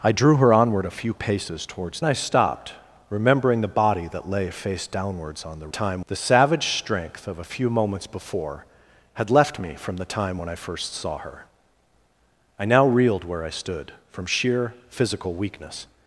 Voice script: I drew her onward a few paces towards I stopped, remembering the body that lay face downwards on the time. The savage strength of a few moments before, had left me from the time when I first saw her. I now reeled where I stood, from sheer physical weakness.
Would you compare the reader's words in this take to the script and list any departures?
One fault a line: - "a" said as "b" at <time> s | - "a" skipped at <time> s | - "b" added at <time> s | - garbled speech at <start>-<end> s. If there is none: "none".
none